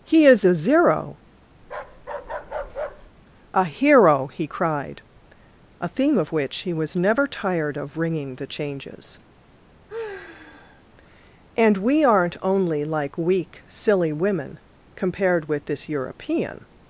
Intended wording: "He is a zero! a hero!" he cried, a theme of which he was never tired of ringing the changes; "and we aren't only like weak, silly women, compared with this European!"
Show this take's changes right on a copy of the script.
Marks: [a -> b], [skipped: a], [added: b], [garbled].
"He is a zero! a hero!" he cried, a theme of which he was never tired of ringing the changes; "and we aren't only like weak, silly women, compared with this European!"